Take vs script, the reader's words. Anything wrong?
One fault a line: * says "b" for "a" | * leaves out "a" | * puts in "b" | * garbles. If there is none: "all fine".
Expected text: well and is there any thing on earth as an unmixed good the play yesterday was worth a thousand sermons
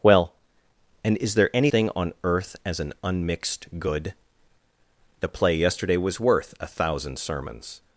all fine